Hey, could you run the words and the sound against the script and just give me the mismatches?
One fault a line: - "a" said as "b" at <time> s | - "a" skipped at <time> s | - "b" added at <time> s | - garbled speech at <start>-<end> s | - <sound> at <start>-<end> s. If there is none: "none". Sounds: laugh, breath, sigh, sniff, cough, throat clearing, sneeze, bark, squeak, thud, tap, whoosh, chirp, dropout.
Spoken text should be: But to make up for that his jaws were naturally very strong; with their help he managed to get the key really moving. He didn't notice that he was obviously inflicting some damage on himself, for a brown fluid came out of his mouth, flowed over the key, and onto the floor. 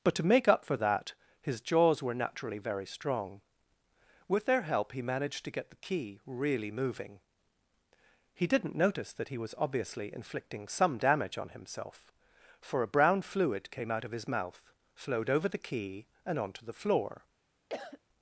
- cough at 17.7-18.0 s